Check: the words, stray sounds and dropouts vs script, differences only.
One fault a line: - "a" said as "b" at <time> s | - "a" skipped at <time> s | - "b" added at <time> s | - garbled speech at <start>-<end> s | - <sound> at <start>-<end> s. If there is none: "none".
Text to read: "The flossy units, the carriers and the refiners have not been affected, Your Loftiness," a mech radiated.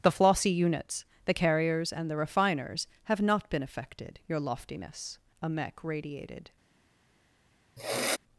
- sniff at 7.8-8.2 s